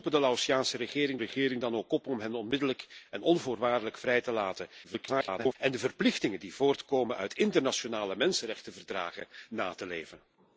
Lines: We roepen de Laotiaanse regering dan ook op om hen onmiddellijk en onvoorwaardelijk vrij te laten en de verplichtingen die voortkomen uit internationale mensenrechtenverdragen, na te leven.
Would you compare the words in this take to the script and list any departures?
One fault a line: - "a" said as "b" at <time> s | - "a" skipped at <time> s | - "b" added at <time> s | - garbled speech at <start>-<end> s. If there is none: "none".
- "regering" added at 1.2 s
- garbled speech at 4.8-5.6 s